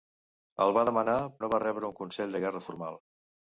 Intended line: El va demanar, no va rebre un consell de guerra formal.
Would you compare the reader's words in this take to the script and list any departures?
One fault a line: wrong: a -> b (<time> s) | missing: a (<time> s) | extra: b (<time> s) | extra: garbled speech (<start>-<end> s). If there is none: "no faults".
no faults